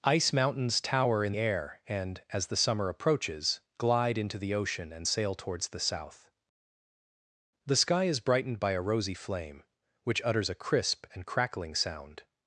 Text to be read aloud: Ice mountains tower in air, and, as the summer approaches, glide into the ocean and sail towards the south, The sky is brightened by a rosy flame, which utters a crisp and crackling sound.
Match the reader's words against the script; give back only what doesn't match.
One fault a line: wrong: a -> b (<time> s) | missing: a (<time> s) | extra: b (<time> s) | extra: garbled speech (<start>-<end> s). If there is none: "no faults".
no faults